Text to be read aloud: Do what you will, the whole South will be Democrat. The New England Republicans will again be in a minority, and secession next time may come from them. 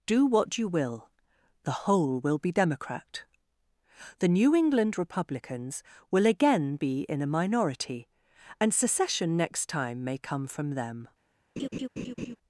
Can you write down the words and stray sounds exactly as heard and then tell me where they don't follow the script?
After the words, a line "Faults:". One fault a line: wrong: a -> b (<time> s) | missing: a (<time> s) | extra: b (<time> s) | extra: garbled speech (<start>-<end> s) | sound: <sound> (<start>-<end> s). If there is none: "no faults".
Do what you will, the whole will be Democrat. The New England Republicans will again be in a minority, and secession next time may come from them.
Faults:
missing: South (2.2 s)
sound: laugh (11.6-12.4 s)